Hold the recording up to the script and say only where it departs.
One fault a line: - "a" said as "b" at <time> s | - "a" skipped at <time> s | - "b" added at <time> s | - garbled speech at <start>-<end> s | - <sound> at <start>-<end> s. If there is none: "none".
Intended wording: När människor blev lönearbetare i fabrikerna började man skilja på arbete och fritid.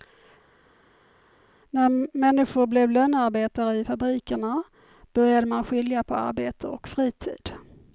none